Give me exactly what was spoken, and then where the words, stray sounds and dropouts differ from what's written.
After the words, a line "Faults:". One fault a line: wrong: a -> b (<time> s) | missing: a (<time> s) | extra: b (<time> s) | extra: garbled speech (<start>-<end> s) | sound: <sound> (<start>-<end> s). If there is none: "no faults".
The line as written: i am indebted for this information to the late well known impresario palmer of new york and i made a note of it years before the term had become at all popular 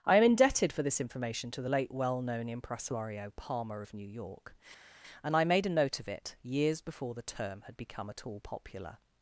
i am indebted for this information to the late well known impresario palmer of new york and i made a note of it years before the term had become at all popular
Faults:
no faults